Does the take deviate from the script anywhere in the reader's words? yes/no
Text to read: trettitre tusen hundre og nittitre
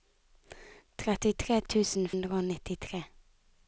no